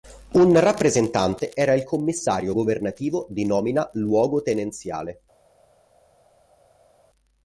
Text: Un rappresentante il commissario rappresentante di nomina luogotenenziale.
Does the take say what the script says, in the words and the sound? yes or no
no